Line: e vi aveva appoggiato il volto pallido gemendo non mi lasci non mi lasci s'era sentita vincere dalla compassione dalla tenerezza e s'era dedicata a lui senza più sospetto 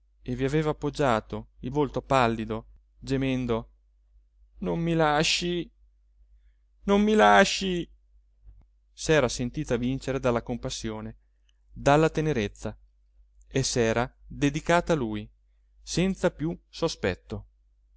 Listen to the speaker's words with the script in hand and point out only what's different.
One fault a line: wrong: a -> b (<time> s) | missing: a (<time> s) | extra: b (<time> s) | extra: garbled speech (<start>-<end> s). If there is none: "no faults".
no faults